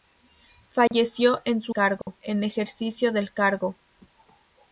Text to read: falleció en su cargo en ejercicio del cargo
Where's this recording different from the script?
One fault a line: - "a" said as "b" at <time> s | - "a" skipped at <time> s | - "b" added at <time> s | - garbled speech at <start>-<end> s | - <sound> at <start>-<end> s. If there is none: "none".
- dropout at 0.9-0.9 s
- dropout at 2.0-2.1 s